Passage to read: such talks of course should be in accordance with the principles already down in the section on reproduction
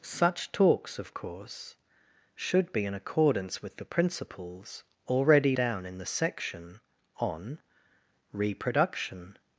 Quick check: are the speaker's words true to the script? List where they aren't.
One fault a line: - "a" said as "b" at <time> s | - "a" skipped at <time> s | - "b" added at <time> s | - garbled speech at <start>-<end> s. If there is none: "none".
none